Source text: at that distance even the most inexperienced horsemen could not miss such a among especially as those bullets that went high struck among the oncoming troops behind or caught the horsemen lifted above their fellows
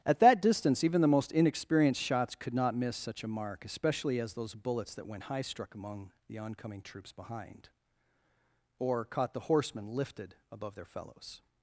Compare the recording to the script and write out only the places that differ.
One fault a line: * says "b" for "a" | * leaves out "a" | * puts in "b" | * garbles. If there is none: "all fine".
* says "shots" for "horsemen"
* says "mark" for "among"